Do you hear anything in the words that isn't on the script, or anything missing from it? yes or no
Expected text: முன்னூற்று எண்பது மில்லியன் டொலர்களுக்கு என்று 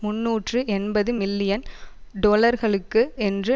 no